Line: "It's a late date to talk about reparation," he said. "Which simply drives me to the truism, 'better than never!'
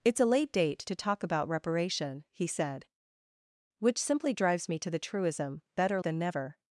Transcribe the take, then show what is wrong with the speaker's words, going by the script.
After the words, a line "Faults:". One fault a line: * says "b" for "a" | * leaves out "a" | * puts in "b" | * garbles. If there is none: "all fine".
"It's a late date to talk about reparation," he said. "Which simply drives me to the truism, 'better than never!'
Faults:
all fine